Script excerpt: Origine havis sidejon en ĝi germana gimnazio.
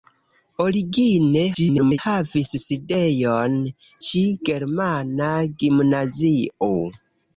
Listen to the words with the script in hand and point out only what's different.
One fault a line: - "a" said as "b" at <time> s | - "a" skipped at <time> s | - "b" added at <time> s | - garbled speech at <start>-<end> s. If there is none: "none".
- garbled speech at 1.5-2.0 s
- "en" skipped at 3.6 s